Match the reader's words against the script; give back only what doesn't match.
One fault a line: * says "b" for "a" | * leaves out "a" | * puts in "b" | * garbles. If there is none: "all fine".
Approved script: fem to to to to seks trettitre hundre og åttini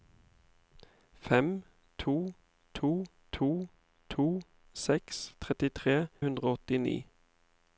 all fine